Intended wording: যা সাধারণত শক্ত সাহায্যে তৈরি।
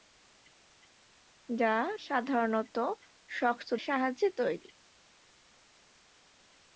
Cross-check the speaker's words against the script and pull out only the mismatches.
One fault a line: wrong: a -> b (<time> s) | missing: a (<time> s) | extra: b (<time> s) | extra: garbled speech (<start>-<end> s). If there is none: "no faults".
no faults